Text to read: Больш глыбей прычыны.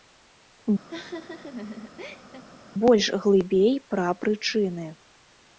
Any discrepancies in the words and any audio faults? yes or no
yes